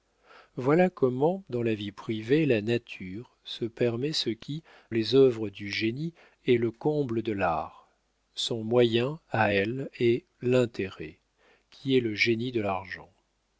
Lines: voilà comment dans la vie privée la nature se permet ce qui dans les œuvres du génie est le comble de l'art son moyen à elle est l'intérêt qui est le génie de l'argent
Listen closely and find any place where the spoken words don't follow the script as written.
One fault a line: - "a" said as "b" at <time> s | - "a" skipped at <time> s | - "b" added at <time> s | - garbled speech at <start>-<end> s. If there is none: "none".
- "dans" skipped at 4.6 s